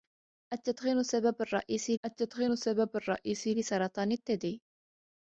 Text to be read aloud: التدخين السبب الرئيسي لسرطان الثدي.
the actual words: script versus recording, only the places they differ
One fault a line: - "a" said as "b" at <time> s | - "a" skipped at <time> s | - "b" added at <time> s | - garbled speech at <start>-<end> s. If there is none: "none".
- "التدخين السبب الرئيسي" added at 2.1 s